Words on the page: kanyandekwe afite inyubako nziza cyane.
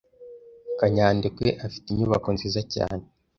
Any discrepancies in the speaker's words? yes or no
no